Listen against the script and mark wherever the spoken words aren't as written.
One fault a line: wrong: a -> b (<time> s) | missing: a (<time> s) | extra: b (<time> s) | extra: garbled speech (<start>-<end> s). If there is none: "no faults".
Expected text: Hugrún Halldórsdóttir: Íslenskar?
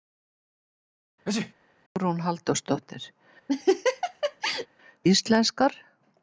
no faults